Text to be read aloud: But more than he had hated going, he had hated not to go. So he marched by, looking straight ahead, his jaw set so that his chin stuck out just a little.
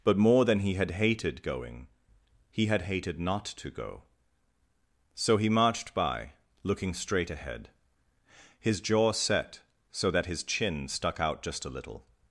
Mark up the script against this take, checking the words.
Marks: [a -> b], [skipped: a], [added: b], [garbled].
But more than he had hated going, he had hated not to go. So he marched by, looking straight ahead, his jaw set so that his chin stuck out just a little.